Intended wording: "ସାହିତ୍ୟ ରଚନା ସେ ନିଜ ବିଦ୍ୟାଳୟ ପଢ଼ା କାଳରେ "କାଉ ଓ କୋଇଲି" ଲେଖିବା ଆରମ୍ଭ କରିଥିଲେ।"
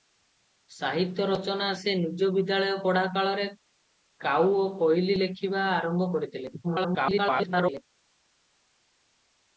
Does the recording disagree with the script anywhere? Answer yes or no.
yes